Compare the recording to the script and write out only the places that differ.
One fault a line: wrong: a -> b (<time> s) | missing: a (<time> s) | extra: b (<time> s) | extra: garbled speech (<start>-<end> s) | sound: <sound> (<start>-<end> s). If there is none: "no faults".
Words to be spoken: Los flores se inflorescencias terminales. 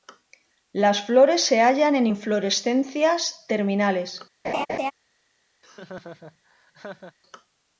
wrong: Los -> Las (0.7 s)
extra: hallan en (1.6 s)
sound: laugh (4.4-4.9 s)
sound: laugh (5.6-7.2 s)